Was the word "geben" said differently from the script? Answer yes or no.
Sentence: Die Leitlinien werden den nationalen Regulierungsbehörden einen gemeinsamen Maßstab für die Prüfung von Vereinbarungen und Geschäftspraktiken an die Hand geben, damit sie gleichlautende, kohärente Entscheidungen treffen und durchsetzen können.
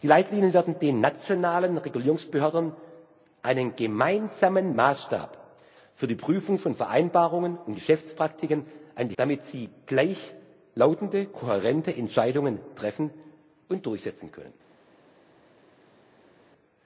yes